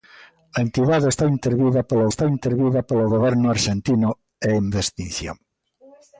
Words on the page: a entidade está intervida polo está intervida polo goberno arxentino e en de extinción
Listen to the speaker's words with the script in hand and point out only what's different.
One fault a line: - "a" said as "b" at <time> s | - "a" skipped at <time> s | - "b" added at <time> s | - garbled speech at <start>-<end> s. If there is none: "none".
none